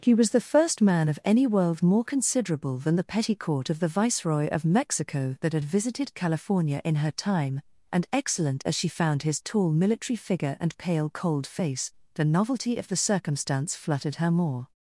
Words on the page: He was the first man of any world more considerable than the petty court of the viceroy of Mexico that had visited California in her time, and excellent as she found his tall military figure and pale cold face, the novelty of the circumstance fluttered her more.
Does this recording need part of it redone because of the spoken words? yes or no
no